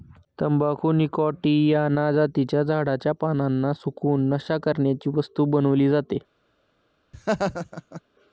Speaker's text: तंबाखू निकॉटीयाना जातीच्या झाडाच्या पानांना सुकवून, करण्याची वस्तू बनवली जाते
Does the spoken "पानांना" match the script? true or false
true